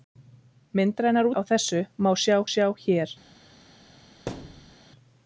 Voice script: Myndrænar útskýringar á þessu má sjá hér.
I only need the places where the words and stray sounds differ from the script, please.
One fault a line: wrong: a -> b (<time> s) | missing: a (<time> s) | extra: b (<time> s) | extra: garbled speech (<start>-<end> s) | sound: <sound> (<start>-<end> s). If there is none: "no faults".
missing: útskýringar (1.3 s)
extra: sjá (2.6 s)
sound: thud (4.3-4.8 s)